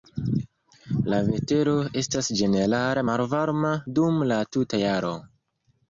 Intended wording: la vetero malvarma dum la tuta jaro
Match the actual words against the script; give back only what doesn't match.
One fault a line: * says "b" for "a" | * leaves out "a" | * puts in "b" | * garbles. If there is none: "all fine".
* puts in "estas ĝenerale"